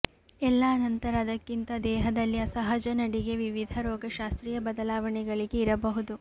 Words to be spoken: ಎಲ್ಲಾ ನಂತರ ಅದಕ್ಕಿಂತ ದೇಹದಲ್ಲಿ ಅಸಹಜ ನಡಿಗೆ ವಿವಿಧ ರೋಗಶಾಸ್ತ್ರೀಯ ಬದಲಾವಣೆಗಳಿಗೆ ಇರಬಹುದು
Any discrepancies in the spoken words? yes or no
no